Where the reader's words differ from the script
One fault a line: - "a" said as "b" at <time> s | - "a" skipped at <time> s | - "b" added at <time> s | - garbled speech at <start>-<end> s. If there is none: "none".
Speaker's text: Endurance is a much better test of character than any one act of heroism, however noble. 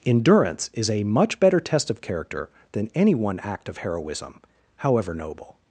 none